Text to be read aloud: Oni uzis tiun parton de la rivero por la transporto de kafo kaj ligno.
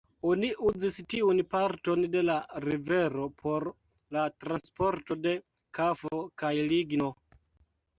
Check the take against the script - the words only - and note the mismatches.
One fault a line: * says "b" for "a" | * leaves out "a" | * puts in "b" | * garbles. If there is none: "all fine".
all fine